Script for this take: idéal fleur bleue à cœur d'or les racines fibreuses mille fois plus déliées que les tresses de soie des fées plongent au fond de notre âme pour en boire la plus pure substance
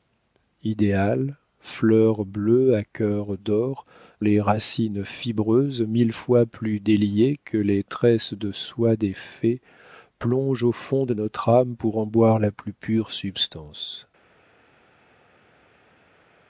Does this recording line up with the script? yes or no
yes